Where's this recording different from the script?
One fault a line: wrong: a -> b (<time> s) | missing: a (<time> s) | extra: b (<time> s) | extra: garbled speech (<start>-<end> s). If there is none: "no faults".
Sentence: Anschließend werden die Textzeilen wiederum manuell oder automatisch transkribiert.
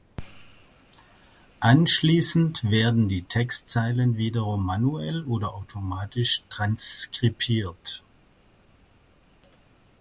no faults